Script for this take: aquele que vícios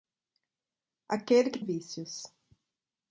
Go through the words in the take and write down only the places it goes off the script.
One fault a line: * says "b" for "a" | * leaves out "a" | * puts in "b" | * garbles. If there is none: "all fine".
all fine